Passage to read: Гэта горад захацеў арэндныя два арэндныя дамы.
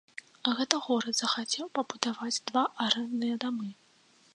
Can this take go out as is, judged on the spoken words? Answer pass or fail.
fail